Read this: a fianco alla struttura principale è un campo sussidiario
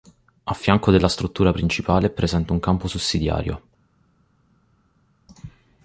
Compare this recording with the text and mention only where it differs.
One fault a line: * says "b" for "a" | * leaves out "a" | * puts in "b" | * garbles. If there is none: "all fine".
* says "della" for "alla"
* puts in "presente"